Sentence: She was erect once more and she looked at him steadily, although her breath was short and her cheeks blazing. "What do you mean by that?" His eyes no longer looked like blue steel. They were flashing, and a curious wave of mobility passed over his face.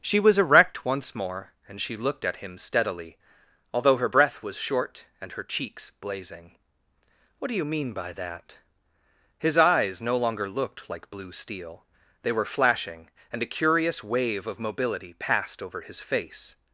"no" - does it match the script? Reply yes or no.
yes